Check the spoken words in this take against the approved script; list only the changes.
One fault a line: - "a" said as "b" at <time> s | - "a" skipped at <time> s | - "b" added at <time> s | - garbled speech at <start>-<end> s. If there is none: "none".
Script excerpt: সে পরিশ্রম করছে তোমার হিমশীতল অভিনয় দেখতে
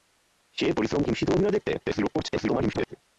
- "করছে তোমার" skipped at 1.0 s
- garbled speech at 1.8-3.0 s